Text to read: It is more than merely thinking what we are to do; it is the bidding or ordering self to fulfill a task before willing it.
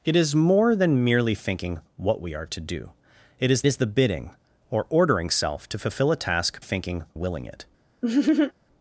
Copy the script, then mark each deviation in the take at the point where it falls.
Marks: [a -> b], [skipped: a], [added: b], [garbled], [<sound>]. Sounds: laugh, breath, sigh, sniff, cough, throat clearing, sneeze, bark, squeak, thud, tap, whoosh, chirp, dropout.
It is more than merely thinking what we are to do; it is [added: is] the bidding or ordering self to fulfill a task [before -> thinking] willing it. [laugh]